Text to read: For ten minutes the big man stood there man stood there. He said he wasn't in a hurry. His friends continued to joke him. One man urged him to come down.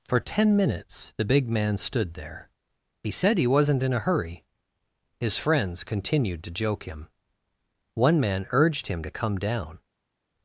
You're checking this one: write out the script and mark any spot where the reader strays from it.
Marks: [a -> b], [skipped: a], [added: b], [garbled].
For ten minutes the big man stood there [skipped: man stood there.] He said he wasn't in a hurry. His friends continued to joke him. One man urged him to come down.